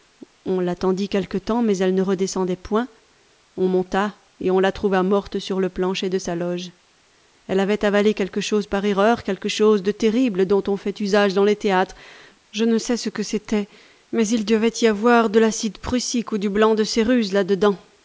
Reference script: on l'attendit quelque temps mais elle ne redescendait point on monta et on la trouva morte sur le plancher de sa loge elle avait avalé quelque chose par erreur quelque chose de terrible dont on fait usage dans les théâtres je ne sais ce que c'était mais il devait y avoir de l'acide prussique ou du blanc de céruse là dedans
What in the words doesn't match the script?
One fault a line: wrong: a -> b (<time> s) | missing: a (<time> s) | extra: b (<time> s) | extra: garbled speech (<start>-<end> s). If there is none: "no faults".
no faults